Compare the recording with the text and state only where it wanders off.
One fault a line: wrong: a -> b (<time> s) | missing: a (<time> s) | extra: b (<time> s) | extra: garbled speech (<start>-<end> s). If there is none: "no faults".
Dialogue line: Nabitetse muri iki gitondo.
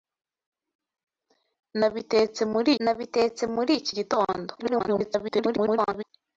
extra: nabitetse muri (2.8 s)
extra: garbled speech (4.6-6.0 s)